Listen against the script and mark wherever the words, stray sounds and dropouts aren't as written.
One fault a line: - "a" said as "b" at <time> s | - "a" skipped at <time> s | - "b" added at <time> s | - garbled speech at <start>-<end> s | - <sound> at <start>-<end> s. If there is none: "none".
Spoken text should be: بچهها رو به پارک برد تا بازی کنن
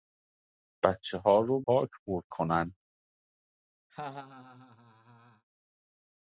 - "به" skipped at 1.6 s
- "تا بازی" skipped at 2.2 s
- laugh at 3.9-5.4 s